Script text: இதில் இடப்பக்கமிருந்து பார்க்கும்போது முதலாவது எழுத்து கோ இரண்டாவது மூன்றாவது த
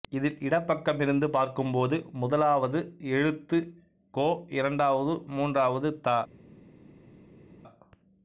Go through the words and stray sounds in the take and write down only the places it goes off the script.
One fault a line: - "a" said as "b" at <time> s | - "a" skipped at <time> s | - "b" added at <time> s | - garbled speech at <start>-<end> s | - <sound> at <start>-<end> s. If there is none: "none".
none